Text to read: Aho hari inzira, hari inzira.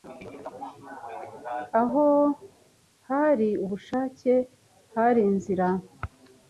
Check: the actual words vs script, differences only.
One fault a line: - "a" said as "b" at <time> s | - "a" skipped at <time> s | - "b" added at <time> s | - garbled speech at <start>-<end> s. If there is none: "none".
- "inzira" said as "ubushake" at 3.6 s